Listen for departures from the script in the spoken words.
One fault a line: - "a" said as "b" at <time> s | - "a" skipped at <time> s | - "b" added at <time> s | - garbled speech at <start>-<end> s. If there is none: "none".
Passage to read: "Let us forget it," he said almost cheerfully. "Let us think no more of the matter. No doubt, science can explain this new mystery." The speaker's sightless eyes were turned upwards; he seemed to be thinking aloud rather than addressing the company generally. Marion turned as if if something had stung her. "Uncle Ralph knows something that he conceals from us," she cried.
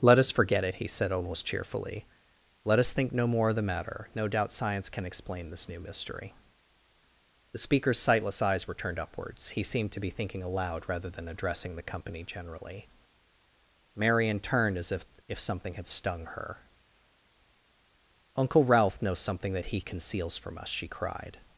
none